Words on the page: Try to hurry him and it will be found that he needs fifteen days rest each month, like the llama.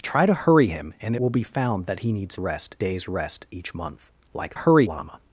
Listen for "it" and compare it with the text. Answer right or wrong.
wrong